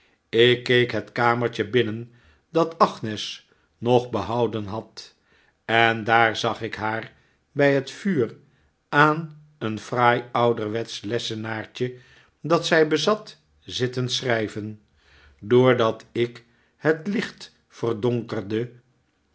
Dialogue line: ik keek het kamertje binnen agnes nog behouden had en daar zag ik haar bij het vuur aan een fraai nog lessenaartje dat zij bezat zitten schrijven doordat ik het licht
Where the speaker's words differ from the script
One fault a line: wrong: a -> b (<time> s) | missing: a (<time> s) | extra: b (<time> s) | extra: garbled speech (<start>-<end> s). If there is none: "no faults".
extra: dat (2.5 s)
wrong: nog -> ouderwetsch (10.3 s)